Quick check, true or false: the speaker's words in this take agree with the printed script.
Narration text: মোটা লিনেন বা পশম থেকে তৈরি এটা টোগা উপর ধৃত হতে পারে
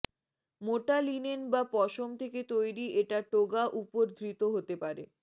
true